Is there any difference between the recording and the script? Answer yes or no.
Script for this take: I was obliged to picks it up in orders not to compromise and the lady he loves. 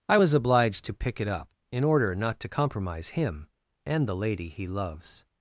yes